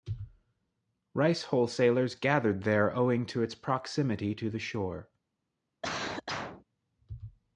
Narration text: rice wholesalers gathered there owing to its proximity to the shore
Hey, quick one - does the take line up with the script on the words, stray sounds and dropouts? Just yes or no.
no